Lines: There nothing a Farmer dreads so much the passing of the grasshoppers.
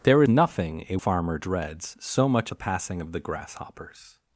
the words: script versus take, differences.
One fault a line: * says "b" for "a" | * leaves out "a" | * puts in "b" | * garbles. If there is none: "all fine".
all fine